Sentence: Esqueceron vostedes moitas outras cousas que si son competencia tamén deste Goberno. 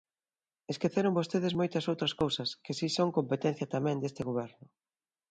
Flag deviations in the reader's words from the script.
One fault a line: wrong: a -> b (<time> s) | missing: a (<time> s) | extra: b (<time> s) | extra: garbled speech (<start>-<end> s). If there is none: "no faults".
no faults